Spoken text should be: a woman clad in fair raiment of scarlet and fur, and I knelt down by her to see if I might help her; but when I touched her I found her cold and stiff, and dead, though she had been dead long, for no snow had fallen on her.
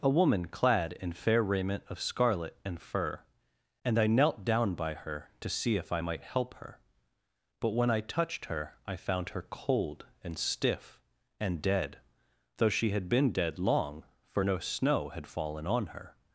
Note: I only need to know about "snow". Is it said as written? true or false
true